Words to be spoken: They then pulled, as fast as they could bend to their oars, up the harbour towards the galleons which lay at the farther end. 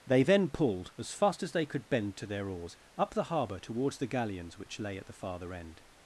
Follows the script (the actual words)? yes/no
yes